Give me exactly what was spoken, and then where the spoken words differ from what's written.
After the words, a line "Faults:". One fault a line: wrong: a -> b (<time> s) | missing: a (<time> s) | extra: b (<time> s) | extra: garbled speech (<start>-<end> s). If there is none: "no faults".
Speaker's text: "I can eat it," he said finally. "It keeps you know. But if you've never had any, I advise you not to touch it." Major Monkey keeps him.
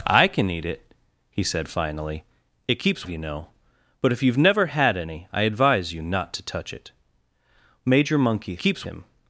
"I can eat it," he said finally. "It keeps you know. But if you've never had any, I advise you not to touch it." Major Monkey keeps him.
Faults:
no faults